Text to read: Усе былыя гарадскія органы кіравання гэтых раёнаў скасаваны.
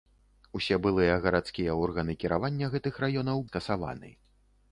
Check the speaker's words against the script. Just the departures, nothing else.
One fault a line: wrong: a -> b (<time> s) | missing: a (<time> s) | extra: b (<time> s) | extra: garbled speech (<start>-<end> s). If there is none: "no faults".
no faults